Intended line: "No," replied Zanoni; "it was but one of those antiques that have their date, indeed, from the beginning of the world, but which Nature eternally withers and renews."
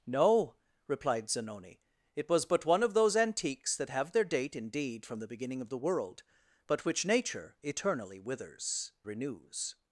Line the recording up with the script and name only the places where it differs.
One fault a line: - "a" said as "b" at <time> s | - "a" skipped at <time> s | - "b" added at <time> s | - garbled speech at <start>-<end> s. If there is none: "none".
- "and" skipped at 8.9 s